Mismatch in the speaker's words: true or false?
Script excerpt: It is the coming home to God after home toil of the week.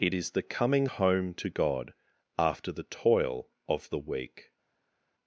true